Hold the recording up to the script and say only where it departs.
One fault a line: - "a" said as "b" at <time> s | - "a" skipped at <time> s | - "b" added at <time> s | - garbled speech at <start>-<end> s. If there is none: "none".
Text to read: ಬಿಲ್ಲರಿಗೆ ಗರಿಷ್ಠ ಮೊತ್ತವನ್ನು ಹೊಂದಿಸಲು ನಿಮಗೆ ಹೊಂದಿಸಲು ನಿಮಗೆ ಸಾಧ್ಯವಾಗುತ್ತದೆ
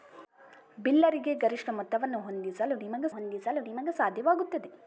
none